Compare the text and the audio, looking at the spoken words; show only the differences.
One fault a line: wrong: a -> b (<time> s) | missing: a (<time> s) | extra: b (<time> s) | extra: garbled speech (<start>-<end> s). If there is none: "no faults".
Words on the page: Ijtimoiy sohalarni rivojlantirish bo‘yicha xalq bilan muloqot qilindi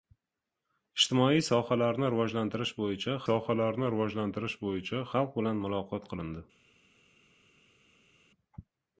extra: sohalarni rivojlantirish bo‘yicha (3.2 s)